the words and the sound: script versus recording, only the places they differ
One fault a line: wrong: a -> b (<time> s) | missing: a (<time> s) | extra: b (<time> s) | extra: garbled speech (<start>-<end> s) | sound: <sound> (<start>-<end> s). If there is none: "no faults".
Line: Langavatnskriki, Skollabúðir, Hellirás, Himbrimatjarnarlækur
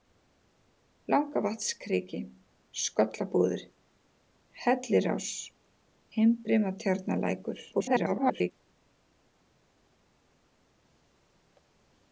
extra: garbled speech (7.7-8.5 s)